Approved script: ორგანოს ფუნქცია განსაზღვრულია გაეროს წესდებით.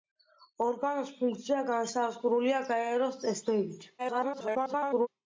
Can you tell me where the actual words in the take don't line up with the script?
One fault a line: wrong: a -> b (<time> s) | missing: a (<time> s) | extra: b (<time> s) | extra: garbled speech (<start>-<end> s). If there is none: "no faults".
extra: garbled speech (4.0-5.1 s)